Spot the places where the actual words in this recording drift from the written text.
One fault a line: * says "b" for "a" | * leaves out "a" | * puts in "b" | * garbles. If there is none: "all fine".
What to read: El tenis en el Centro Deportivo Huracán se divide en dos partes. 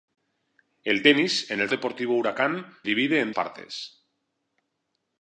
* leaves out "Centro"
* leaves out "se"
* leaves out "dos"